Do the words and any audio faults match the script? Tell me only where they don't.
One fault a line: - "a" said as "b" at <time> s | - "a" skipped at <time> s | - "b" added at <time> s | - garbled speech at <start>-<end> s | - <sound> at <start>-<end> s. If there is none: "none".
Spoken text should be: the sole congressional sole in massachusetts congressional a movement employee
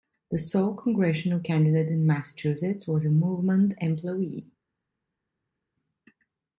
- "sole" said as "candidate" at 1.4 s
- "congressional" said as "was" at 2.9 s